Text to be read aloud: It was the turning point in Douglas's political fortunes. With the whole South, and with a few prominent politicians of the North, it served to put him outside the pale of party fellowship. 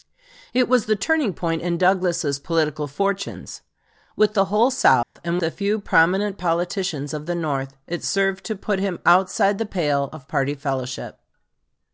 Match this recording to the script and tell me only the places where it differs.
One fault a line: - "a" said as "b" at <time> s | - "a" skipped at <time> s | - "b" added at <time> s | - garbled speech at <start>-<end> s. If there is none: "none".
- "with" skipped at 5.4 s